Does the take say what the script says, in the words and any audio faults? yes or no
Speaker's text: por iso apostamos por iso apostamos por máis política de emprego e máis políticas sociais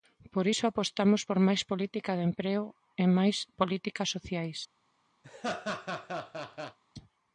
no